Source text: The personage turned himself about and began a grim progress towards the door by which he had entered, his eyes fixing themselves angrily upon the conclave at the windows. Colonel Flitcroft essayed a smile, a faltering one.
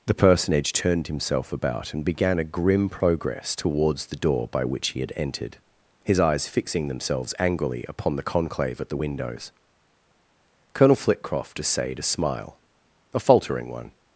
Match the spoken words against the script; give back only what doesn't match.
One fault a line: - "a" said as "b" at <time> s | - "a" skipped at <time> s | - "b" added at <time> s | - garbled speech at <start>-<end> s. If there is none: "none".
none